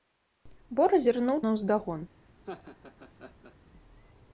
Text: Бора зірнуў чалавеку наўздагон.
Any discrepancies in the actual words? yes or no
yes